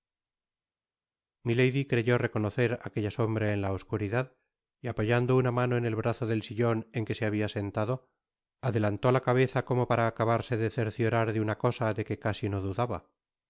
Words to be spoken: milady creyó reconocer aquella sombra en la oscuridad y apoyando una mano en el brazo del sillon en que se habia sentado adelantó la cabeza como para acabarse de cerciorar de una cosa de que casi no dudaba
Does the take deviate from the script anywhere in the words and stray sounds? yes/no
no